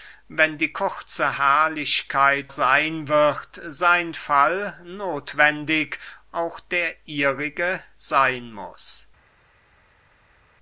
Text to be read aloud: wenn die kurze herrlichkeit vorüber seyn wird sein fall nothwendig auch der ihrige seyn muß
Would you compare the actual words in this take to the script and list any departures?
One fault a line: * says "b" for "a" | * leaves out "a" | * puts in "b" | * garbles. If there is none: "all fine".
* leaves out "vorüber"